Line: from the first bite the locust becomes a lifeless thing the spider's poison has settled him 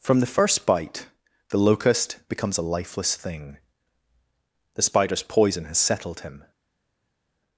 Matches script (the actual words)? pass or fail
pass